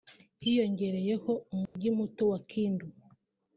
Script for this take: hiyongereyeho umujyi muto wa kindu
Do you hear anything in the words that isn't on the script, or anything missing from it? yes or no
no